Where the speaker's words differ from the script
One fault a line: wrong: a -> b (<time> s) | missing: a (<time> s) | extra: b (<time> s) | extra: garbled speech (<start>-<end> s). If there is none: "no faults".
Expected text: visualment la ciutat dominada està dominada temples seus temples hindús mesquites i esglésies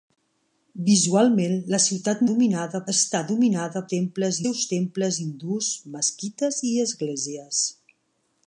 no faults